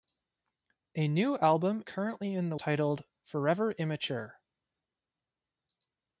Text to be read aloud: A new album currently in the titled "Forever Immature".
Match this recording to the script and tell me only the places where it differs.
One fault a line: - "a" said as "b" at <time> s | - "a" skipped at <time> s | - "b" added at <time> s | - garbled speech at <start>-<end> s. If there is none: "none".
none